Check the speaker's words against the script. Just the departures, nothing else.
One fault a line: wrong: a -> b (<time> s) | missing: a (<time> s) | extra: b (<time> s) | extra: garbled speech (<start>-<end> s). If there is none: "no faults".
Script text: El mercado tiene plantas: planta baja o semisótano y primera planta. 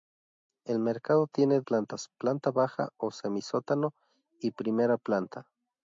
no faults